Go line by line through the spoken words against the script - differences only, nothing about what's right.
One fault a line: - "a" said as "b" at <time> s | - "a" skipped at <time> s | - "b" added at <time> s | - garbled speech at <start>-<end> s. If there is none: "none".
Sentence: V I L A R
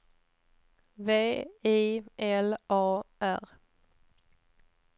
none